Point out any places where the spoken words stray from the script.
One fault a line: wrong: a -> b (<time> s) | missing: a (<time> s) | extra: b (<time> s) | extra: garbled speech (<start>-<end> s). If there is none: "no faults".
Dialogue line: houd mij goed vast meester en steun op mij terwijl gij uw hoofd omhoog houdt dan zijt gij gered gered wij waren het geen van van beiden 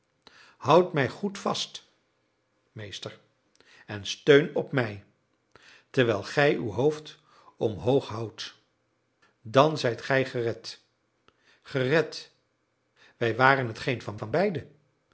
no faults